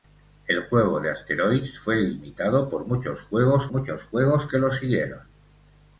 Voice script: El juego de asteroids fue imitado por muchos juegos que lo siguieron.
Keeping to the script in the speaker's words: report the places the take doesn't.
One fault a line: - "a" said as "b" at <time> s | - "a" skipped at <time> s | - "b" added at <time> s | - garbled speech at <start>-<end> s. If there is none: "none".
- "muchos juegos" added at 3.7 s